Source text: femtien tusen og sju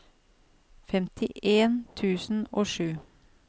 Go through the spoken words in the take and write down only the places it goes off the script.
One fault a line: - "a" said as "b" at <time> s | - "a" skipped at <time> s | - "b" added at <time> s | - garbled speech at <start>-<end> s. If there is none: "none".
none